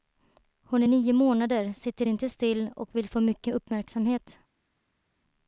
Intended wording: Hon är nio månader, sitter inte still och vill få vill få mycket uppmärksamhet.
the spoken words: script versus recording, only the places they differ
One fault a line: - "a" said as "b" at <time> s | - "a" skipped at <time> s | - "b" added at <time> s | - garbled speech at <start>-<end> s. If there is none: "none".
- "vill få" skipped at 3.2 s